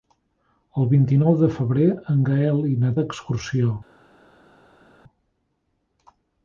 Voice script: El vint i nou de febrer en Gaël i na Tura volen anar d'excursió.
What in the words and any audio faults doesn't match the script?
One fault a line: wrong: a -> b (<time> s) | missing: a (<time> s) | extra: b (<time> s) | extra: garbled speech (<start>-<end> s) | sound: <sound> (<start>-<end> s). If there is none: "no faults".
missing: Tura volen anar (2.9 s)